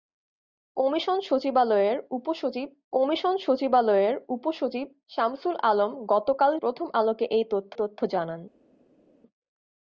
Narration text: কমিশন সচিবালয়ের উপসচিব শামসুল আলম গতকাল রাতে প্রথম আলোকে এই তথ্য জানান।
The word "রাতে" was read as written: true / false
false